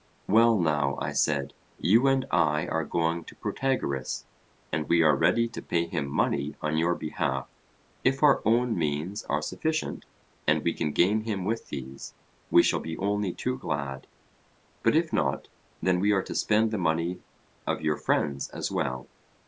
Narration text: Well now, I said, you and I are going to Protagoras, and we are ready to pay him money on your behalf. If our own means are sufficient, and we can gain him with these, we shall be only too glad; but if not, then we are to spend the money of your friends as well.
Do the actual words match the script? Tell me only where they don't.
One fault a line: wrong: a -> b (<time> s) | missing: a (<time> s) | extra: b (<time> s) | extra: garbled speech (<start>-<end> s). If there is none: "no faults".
no faults